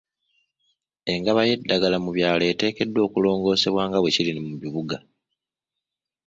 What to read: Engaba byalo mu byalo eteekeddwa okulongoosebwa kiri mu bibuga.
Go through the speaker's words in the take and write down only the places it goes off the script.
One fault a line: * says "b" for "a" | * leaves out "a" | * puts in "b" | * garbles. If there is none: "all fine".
* says "y'eddagala" for "byalo"
* puts in "nga bwe"